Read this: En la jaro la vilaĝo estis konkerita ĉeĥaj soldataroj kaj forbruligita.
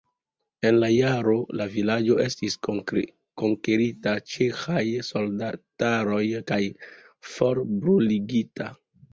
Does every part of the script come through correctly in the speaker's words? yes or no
yes